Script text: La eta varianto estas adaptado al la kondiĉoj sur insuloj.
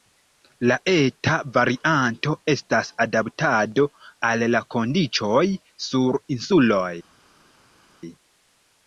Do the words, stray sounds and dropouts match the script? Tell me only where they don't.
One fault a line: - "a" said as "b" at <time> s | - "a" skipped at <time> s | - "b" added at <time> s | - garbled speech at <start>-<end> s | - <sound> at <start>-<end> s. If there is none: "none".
none